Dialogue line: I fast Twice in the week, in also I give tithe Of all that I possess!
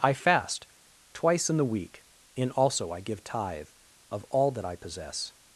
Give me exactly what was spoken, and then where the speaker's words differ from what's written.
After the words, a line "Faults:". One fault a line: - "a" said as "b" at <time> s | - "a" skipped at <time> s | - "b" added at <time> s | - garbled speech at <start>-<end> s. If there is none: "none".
I fast Twice in the week, in also I give tithe Of all that I possess!
Faults:
none